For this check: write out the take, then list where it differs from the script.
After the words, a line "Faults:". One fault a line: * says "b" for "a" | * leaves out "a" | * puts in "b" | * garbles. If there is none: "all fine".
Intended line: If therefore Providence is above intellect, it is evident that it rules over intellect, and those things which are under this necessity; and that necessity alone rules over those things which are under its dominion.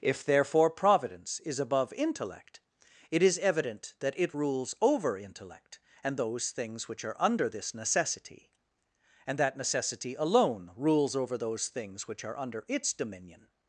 If therefore Providence is above intellect, it is evident that it rules over intellect, and those things which are under this necessity; and that necessity alone rules over those things which are under its dominion.
Faults:
all fine